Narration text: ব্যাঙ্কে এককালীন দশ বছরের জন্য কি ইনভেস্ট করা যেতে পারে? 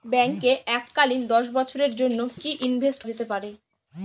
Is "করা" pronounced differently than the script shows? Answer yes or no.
yes